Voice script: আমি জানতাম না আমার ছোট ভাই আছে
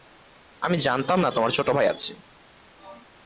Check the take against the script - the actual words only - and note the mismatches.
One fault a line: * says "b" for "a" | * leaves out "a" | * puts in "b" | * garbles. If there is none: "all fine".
* says "তোমার" for "আমার"